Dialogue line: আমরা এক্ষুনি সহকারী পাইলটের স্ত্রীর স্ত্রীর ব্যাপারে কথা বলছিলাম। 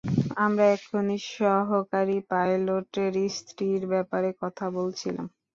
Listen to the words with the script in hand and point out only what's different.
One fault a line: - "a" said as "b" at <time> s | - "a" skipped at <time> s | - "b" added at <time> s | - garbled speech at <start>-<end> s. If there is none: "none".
- "স্ত্রীর" skipped at 3.8 s